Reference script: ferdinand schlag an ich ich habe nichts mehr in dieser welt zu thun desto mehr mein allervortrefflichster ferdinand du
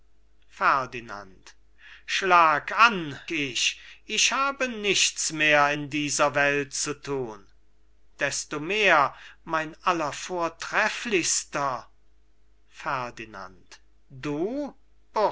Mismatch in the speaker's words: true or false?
false